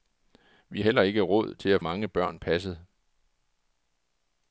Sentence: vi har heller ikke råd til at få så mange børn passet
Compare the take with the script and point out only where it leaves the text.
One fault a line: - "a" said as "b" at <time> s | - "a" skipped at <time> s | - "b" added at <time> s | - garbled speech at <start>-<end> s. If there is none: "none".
- "har" skipped at 0.8 s
- "få så" skipped at 1.8 s